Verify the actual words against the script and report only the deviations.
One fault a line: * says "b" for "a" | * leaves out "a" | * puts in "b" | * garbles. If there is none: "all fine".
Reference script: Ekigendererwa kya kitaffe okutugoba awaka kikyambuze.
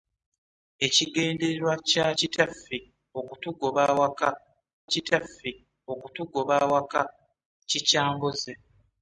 * puts in "kitaffe okutugoba awaka"